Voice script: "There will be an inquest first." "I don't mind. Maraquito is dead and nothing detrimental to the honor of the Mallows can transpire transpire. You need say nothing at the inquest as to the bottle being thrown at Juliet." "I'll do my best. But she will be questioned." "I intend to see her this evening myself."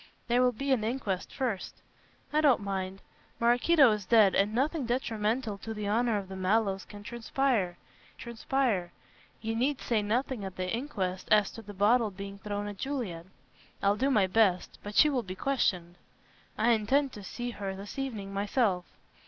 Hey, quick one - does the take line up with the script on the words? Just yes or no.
yes